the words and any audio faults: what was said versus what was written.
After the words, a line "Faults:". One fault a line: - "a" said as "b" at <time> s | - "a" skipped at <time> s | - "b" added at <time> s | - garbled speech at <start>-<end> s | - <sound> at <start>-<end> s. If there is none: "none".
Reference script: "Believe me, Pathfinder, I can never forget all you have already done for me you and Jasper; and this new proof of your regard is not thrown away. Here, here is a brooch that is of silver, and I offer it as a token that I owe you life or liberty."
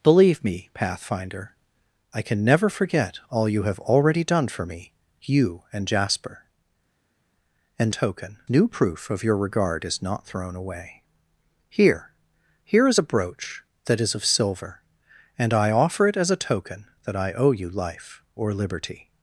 "Believe me, Pathfinder, I can never forget all you have already done for me you and Jasper; and token new proof of your regard is not thrown away. Here, here is a brooch that is of silver, and I offer it as a token that I owe you life or liberty."
Faults:
- "this" said as "token" at 7.9 s